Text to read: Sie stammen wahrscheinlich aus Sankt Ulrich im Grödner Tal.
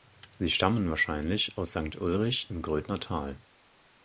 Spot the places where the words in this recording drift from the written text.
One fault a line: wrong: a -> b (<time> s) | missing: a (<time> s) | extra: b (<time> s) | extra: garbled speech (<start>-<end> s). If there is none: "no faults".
no faults